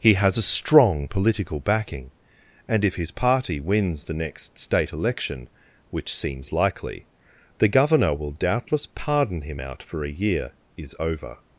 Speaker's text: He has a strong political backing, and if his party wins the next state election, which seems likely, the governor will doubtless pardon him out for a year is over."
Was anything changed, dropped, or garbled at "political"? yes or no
no